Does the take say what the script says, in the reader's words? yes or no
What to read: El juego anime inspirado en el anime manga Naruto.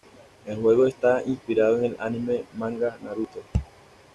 no